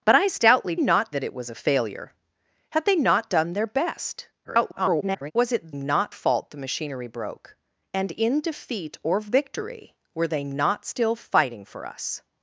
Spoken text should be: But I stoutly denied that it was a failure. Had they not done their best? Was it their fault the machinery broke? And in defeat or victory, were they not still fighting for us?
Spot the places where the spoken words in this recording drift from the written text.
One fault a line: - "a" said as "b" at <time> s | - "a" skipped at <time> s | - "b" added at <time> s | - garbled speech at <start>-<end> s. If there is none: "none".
- "denied" said as "not" at 0.8 s
- garbled speech at 4.4-5.3 s
- "their" said as "not" at 5.7 s